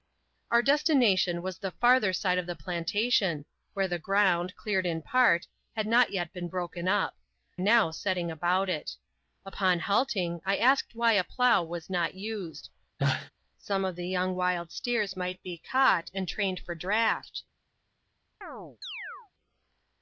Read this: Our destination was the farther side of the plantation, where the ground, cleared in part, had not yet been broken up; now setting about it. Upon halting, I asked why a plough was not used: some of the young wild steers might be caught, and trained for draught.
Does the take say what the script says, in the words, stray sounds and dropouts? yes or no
no